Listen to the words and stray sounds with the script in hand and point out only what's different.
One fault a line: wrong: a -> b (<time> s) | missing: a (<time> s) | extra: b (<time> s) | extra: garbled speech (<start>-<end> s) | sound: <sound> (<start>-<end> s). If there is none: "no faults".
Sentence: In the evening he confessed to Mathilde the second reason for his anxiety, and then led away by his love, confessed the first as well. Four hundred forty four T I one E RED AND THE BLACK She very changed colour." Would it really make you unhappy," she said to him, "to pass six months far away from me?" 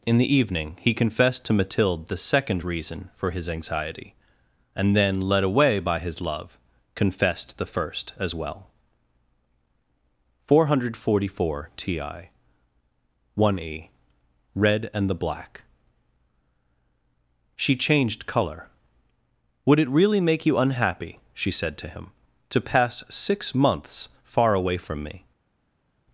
missing: very (17.8 s)